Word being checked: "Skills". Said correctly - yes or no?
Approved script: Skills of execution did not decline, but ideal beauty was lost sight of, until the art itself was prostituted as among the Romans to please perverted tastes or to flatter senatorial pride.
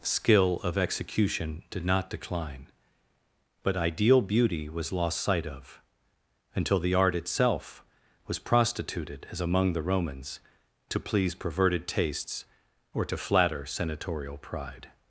no